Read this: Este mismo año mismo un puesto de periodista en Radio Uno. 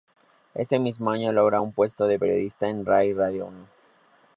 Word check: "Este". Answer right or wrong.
wrong